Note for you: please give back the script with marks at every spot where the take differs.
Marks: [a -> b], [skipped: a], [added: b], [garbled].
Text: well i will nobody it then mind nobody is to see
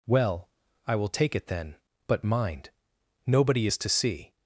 well i will [nobody -> take] it then [added: but] mind nobody is to see